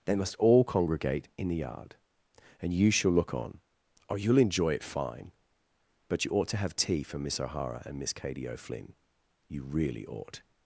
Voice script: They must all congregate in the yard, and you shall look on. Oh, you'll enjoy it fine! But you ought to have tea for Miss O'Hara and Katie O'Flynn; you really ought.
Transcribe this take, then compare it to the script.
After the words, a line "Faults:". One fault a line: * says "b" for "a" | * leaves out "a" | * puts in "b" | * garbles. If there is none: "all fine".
They must all congregate in the yard, and you shall look on. Oh, you'll enjoy it fine! But you ought to have tea for Miss O'Hara and Miss Katie O'Flynn; you really ought.
Faults:
* puts in "Miss"